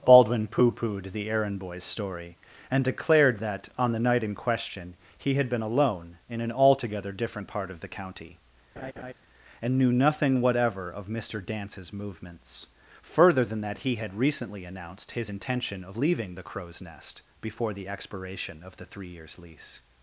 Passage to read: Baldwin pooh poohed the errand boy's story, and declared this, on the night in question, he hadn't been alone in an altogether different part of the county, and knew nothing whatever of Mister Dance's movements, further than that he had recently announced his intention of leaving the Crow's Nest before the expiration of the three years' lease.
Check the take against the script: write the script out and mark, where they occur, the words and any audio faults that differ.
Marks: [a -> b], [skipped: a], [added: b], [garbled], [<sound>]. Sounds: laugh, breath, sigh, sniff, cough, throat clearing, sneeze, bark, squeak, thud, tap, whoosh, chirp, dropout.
Baldwin pooh poohed the errand boy's story, and declared [this, -> that] on the night in question, he [hadn't -> had] been alone in an altogether different part of the county, [laugh] and knew nothing whatever of Mister Dance's movements, further than that he had recently announced his intention of leaving the Crow's Nest before the expiration of the three years' lease.